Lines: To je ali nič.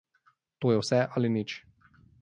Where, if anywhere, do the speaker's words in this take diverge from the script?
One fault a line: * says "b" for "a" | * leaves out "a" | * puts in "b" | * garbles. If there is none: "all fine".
* puts in "vse"